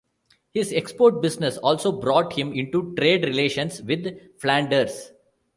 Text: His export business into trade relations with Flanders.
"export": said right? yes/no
yes